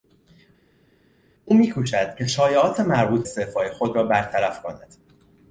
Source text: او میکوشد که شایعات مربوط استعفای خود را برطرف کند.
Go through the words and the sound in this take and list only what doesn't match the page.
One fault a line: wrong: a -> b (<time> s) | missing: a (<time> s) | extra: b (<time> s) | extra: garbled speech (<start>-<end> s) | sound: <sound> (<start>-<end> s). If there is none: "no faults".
no faults